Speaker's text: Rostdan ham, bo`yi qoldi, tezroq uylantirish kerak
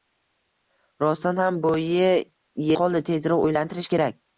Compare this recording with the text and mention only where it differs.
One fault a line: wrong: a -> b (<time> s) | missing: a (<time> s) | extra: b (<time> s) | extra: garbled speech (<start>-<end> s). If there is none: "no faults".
no faults